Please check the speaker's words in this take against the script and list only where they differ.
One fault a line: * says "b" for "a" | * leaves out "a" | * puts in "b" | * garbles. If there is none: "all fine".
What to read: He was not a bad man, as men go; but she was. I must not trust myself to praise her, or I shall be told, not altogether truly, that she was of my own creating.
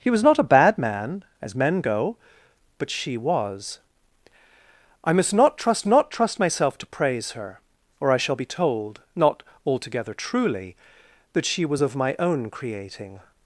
* puts in "not trust"